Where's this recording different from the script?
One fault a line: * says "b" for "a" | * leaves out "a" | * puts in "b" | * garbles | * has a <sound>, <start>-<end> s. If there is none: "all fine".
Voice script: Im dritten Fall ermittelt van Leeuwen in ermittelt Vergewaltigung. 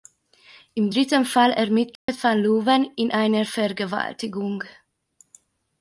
* has a dropout, 2.0-2.1 s
* says "einer" for "ermittelt"